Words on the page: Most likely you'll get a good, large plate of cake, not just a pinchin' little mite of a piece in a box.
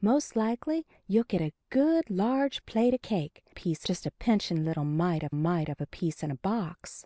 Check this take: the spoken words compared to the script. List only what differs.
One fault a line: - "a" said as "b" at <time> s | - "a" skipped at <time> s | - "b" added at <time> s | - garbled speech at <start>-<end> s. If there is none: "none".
- "not" said as "piece" at 3.5 s
- "mite of" added at 5.3 s